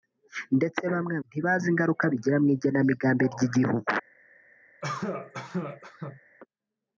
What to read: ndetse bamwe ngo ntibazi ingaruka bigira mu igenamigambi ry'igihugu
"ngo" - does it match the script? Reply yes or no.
no